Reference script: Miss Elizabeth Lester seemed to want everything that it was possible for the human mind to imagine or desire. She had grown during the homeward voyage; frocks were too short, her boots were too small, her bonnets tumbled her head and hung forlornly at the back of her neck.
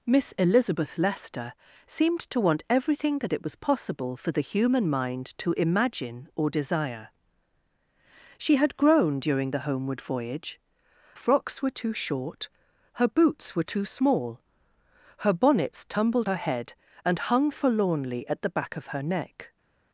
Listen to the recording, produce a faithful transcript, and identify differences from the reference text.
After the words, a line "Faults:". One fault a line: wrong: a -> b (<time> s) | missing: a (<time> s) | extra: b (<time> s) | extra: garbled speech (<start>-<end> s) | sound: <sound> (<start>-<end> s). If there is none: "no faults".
Miss Elizabeth Lester seemed to want everything that it was possible for the human mind to imagine or desire. She had grown during the homeward voyage; frocks were too short, her boots were too small, her bonnets tumbled her head and hung forlornly at the back of her neck.
Faults:
no faults